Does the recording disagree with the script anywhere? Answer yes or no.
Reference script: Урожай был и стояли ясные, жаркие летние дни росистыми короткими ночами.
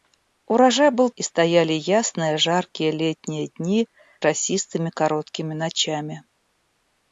no